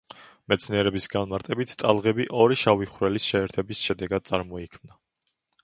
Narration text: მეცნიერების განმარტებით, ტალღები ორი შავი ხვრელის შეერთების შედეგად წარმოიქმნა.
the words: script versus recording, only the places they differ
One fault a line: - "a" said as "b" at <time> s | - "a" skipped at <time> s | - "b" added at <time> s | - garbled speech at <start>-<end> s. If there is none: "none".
none